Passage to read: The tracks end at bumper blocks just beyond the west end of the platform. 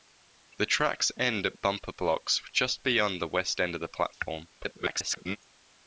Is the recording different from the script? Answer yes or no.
yes